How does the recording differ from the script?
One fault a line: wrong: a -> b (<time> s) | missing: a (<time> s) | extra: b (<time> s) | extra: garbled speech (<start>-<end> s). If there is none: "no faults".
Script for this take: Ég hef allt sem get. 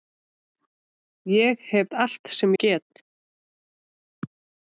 no faults